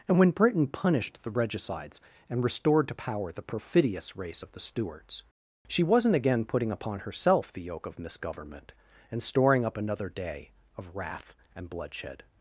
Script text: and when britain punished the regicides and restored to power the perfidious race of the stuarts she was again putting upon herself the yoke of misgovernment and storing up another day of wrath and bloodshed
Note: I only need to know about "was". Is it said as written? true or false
false